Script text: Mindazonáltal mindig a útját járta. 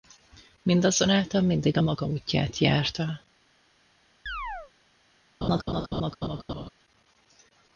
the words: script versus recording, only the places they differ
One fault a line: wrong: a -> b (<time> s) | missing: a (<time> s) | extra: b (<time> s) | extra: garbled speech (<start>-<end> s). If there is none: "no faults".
extra: maga (1.8 s)